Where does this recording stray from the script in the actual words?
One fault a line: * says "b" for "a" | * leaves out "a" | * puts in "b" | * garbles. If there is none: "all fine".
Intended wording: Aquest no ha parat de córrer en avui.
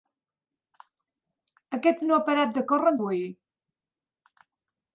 all fine